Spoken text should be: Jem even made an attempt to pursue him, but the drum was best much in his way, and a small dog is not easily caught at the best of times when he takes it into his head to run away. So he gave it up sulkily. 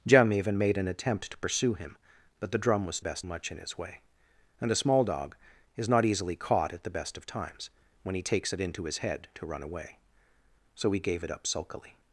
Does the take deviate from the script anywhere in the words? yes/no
no